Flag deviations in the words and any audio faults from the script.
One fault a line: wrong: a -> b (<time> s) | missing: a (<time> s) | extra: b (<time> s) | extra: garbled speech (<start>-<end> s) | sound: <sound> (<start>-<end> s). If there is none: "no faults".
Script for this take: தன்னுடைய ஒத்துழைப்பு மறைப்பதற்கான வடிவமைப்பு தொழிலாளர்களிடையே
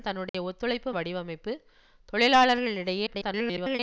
sound: dropout (0.3-0.3 s)
missing: மறைப்பதற்கான (0.9 s)
extra: garbled speech (3.1-3.8 s)